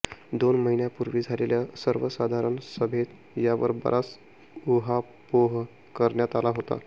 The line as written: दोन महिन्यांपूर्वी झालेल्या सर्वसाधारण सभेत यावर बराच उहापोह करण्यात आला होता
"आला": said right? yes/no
yes